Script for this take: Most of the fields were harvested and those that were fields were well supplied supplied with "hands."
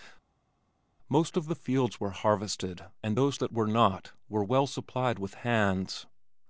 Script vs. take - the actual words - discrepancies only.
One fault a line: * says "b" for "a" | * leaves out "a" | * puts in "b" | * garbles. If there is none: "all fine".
* says "not" for "fields"
* leaves out "supplied"